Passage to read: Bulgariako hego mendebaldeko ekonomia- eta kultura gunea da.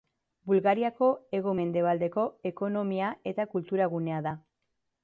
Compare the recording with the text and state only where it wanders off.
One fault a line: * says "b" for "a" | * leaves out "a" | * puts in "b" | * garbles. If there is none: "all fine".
all fine